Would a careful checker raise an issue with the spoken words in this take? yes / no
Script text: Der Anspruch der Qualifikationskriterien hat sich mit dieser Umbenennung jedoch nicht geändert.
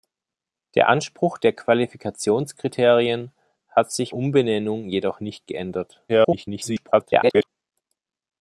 yes